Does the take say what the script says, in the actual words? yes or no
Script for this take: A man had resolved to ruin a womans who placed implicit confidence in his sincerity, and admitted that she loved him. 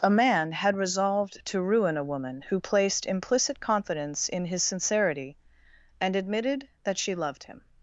no